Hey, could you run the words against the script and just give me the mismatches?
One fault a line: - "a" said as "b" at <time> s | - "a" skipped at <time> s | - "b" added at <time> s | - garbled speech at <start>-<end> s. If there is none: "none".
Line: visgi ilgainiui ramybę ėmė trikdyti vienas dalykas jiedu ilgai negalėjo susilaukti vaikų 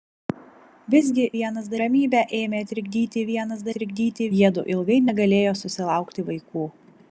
- "ilgainiui" said as "vienas" at 1.4 s
- "dalykas" said as "trikdyti" at 3.8 s